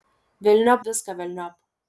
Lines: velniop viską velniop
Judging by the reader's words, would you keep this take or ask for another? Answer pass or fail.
pass